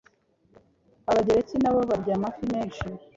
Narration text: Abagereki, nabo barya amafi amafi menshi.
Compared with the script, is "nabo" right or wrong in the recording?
right